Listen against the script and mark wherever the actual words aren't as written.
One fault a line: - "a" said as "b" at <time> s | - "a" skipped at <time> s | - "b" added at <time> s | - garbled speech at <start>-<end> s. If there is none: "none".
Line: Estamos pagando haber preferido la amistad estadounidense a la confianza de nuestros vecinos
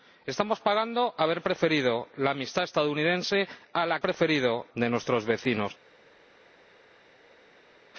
- "confianza" said as "preferido" at 4.0 s